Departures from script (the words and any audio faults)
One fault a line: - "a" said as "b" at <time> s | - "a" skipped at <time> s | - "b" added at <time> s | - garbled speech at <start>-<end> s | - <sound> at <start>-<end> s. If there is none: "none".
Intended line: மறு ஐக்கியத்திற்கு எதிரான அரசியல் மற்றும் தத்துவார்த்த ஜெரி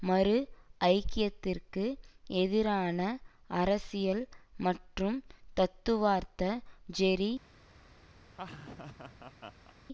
- laugh at 8.3-9.8 s